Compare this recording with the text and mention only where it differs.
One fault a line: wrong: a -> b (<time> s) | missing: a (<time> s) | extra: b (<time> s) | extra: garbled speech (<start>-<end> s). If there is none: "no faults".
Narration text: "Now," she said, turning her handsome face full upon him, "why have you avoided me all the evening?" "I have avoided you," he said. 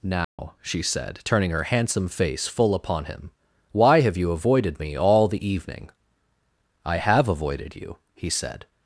no faults